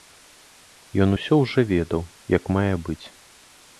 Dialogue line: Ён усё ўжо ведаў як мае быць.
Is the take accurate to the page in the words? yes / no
yes